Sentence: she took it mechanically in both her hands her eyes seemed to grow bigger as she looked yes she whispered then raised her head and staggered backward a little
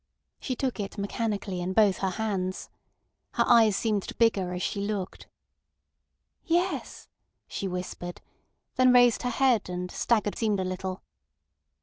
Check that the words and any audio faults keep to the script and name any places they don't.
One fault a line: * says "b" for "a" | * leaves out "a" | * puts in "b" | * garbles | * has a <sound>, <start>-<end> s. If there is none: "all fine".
* leaves out "grow"
* says "seemed" for "backward"